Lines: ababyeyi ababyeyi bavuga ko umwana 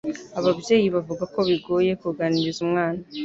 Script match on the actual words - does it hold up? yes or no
no